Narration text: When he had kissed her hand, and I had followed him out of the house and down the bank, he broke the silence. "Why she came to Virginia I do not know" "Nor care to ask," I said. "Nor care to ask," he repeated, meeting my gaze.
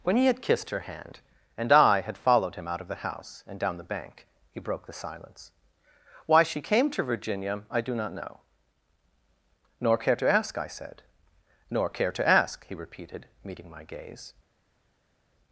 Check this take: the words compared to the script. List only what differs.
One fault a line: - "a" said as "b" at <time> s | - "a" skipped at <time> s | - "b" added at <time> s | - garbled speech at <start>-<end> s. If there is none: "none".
none